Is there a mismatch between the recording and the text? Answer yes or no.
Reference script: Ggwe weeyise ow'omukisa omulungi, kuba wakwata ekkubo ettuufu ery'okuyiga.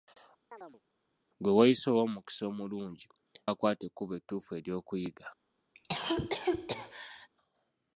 yes